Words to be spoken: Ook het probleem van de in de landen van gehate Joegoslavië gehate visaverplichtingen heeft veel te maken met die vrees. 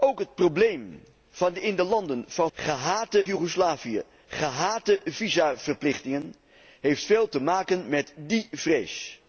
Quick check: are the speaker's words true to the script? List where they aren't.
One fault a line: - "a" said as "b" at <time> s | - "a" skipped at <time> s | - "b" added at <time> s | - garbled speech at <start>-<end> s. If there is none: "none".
none